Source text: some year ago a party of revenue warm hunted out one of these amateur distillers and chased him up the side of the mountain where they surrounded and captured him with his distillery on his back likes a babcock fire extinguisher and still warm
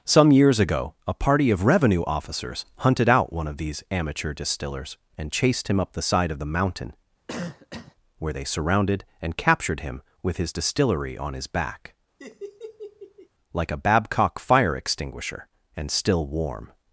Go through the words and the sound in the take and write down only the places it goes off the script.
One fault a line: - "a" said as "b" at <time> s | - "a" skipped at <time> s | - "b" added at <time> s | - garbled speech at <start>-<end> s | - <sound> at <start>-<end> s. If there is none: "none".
- "year" said as "years" at 0.3 s
- "warm" said as "officers" at 2.0 s
- cough at 7.3-8.0 s
- laugh at 12.2-13.3 s
- "likes" said as "like" at 13.5 s